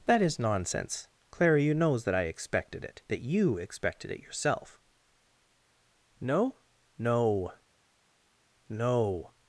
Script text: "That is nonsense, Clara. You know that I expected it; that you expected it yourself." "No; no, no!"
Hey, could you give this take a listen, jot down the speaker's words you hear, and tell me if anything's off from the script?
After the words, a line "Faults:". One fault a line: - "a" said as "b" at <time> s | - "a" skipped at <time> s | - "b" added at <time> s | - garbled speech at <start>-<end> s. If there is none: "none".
"That is nonsense, Clara. You knows that I expected it; that you expected it yourself." "No; no, no!"
Faults:
- "know" said as "knows" at 1.7 s